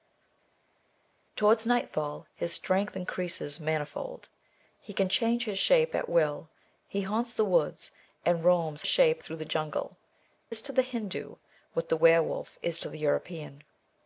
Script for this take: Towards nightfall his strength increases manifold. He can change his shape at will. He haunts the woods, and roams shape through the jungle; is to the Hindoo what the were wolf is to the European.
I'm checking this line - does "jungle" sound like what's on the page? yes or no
yes